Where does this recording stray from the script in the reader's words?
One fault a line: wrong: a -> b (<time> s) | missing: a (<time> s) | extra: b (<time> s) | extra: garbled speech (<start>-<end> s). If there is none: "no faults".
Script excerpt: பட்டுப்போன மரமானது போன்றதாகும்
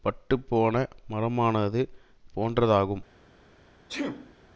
no faults